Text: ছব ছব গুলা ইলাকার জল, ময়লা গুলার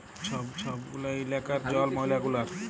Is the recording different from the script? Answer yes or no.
no